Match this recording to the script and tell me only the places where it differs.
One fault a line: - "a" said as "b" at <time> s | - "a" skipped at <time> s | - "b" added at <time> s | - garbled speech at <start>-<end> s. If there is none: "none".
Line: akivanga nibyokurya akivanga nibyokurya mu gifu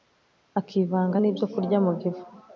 - "akivanga nibyokurya" skipped at 1.8 s